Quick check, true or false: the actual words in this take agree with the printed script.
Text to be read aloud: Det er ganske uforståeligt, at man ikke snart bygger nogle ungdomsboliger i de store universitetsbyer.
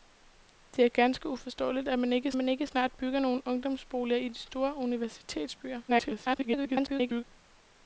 false